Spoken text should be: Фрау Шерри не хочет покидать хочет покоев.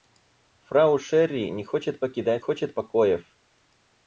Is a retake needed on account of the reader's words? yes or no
no